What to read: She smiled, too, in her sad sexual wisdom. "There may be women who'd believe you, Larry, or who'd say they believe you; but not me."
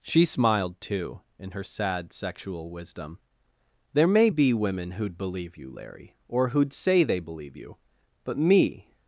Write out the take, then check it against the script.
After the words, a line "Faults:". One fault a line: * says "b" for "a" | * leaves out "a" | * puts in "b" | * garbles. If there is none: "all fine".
She smiled, too, in her sad sexual wisdom. "There may be women who'd believe you, Larry, or who'd say they believe you; but me."
Faults:
* leaves out "not"